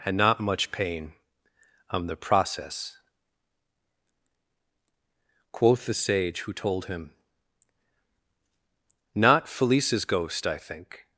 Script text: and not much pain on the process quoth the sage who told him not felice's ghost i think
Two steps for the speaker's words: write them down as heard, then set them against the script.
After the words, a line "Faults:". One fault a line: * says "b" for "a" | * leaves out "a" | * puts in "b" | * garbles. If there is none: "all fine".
and not much pain on the process quoth the sage who told him not felice's ghost i think
Faults:
all fine